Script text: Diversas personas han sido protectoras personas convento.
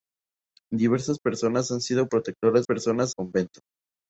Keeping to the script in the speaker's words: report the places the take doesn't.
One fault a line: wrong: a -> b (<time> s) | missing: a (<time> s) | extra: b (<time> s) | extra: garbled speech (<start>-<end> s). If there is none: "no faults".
no faults